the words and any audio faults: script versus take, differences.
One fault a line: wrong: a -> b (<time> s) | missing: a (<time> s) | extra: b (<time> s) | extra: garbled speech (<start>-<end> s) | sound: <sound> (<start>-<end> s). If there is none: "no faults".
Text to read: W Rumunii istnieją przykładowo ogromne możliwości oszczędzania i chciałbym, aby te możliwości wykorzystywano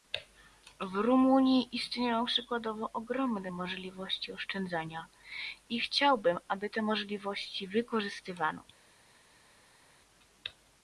no faults